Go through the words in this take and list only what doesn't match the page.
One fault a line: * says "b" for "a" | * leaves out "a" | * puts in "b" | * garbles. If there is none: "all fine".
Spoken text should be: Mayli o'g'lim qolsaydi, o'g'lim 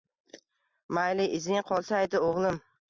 * says "izing" for "o'g'lim"